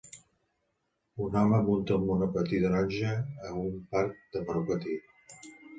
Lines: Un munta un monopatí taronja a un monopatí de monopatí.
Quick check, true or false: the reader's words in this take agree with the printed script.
false